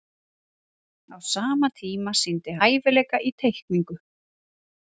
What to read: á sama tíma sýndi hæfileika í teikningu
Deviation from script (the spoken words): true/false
false